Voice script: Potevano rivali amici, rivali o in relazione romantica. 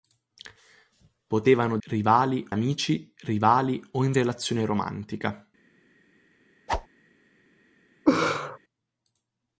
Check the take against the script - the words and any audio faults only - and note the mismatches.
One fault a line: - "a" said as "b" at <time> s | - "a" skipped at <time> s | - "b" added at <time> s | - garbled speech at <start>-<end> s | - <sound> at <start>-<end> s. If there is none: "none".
- whoosh at 6.7-6.9 s
- laugh at 8.1-8.6 s